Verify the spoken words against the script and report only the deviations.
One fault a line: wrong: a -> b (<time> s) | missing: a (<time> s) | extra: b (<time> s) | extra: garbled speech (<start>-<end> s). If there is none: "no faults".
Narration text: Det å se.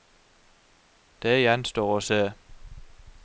extra: gjenstår (1.4 s)